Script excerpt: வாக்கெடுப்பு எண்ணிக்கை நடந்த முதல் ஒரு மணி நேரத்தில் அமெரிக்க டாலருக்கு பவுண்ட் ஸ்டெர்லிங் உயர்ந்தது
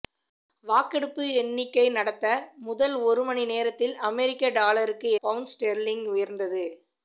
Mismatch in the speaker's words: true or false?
false